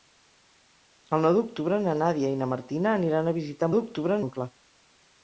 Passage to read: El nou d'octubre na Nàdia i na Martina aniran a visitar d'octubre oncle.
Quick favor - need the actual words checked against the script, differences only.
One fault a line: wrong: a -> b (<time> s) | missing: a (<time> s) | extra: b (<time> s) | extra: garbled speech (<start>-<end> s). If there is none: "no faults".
no faults